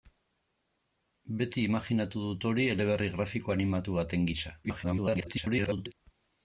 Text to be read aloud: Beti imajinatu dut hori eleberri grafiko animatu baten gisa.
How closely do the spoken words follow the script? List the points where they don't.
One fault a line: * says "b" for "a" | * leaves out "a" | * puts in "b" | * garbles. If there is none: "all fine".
* garbles